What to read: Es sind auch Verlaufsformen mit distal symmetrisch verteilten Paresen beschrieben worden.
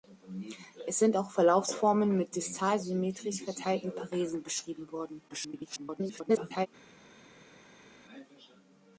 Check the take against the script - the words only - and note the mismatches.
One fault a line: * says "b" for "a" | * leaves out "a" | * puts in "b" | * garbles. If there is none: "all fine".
* garbles